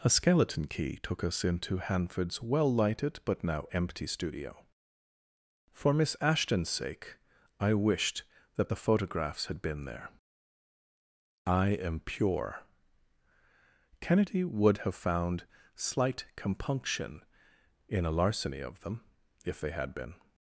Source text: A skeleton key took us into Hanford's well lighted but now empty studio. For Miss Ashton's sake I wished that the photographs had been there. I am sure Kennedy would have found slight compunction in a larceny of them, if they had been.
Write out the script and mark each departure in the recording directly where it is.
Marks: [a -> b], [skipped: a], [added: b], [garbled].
A skeleton key took us into Hanford's well lighted but now empty studio. For Miss Ashton's sake I wished that the photographs had been there. I am [sure -> pure] Kennedy would have found slight compunction in a larceny of them, if they had been.